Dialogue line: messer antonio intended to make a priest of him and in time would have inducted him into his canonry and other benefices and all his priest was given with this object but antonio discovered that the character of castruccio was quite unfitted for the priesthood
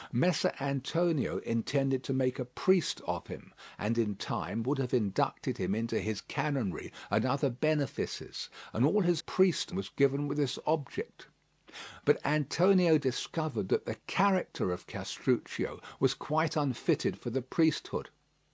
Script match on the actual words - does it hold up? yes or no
yes